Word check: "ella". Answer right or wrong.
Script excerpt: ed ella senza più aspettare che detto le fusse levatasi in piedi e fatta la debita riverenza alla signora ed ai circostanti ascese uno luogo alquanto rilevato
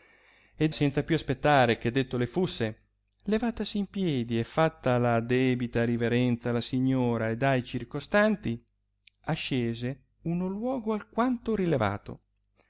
wrong